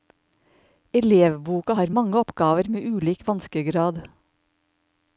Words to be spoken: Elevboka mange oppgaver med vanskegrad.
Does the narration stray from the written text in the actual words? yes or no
yes